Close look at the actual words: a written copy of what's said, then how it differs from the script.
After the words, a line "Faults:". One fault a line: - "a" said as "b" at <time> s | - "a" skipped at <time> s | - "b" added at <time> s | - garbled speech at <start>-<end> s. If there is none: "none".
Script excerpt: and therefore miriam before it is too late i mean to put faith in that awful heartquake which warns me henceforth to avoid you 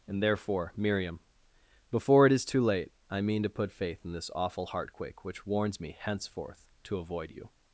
and therefore miriam before it is too late i mean to put faith in this awful heartquake which warns me henceforth to avoid you
Faults:
- "that" said as "this" at 4.1 s